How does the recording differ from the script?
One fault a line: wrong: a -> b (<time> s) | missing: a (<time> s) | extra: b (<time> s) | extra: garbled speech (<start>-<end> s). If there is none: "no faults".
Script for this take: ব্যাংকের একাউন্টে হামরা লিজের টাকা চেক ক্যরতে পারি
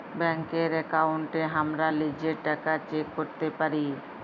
no faults